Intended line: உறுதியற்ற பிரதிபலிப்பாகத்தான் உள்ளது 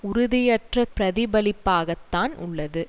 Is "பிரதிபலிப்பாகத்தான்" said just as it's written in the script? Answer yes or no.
yes